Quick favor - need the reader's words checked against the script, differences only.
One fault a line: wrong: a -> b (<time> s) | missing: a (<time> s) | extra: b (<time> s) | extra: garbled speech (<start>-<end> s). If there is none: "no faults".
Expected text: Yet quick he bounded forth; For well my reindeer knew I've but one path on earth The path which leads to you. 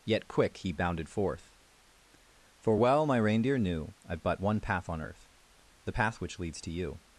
no faults